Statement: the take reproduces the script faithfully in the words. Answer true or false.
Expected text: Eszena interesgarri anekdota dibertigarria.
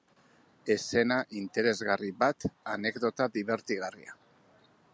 false